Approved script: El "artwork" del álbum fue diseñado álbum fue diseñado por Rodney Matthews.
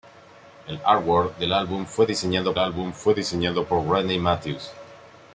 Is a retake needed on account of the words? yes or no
no